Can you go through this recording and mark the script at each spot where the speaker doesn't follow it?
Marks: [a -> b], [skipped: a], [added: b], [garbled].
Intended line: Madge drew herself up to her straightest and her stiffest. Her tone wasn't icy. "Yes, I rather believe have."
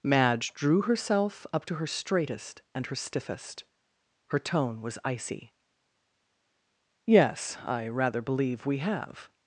Madge drew herself up to her straightest and her stiffest. Her tone [wasn't -> was] icy. "Yes, I rather believe [added: we] have."